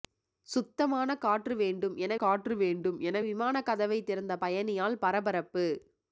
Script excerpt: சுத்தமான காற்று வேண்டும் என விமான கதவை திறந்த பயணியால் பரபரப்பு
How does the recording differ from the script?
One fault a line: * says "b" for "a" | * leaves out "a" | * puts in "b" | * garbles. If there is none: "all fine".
* puts in "காற்று வேண்டும் என"